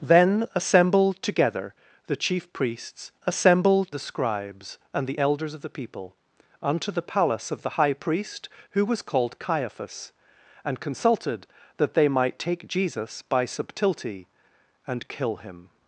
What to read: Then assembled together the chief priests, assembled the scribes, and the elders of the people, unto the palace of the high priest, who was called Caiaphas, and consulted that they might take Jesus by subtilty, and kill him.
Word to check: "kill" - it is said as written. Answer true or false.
true